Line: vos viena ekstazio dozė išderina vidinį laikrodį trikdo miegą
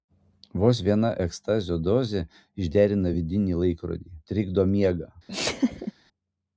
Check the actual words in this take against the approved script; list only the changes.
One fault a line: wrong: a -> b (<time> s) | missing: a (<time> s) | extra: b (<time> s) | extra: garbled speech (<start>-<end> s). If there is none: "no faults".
no faults